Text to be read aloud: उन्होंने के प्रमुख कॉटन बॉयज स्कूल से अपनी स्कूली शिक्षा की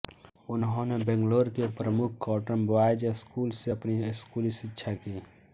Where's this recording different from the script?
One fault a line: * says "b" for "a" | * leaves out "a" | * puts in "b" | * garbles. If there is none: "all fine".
* puts in "बैंगलोर"